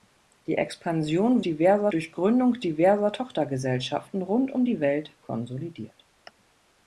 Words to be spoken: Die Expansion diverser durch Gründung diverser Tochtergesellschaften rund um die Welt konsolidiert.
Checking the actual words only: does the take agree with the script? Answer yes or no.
yes